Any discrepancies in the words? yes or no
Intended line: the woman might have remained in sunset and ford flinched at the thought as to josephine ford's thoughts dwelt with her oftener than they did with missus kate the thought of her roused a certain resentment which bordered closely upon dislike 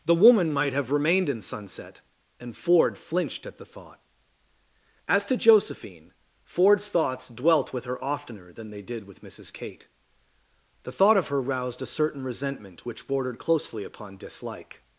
no